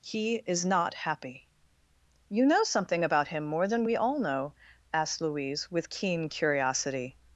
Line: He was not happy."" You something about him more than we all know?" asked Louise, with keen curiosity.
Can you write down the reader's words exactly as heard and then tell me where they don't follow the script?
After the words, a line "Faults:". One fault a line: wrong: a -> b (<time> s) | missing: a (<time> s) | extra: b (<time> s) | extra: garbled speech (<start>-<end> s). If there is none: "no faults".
He is not happy."" You know something about him more than we all know?" asked Louise, with keen curiosity.
Faults:
wrong: was -> is (0.5 s)
extra: know (2.5 s)